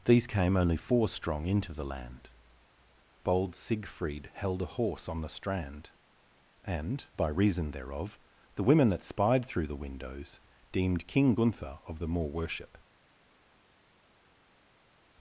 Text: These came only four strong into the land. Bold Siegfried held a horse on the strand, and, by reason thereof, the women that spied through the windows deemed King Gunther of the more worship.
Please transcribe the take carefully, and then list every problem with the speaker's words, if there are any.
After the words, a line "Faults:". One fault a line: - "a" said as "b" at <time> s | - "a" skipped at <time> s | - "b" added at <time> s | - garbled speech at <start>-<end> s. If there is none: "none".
These came only four strong into the land. Bold Siegfried held a horse on the strand, and, by reason thereof, the women that spied through the windows deemed King Gunther of the more worship.
Faults:
none